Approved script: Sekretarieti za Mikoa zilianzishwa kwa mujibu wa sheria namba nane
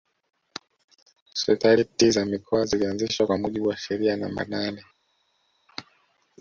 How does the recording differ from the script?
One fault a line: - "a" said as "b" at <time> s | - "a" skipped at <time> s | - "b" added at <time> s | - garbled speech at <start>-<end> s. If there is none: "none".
none